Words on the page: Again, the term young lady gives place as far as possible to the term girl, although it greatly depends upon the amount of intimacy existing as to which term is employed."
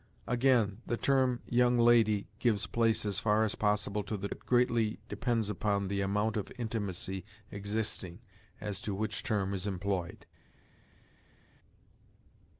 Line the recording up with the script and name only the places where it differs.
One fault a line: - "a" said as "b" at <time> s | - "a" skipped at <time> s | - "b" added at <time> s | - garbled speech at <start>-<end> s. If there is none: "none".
- "term girl although" skipped at 4.3 s